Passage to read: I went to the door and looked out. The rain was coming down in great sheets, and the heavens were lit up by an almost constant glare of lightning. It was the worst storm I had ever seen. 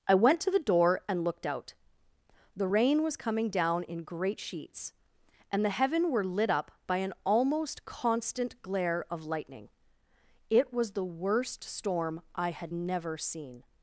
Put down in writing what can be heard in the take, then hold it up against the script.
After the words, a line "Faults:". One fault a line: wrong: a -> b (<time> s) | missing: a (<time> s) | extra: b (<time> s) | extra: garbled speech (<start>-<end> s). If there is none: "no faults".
I went to the door and looked out. The rain was coming down in great sheets, and the heaven were lit up by an almost constant glare of lightning. It was the worst storm I had never seen.
Faults:
wrong: heavens -> heaven (5.7 s)
wrong: ever -> never (12.7 s)